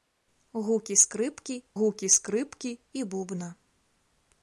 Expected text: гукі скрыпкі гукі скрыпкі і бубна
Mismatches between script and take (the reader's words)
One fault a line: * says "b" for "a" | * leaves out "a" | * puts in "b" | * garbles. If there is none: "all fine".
all fine